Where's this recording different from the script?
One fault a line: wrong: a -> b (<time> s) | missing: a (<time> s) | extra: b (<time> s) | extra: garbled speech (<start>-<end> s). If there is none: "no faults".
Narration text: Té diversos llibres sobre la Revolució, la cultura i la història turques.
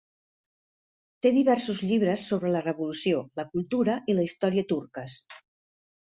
no faults